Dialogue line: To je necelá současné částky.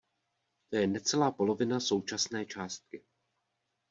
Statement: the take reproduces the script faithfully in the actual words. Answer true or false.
false